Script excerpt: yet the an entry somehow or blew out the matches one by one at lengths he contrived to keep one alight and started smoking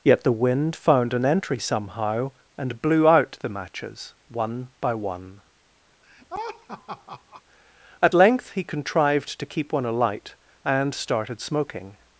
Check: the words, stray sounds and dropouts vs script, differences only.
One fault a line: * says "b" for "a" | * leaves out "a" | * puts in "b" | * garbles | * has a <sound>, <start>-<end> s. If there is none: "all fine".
* puts in "wind found"
* says "and" for "or"
* has a laugh, 6.0-7.4 s
* says "length" for "lengths"